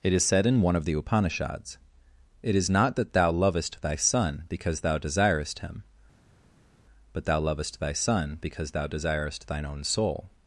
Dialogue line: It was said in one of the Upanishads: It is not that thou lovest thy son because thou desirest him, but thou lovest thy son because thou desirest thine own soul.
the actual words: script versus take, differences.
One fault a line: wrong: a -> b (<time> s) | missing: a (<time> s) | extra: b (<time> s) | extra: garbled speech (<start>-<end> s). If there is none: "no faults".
wrong: was -> is (0.1 s)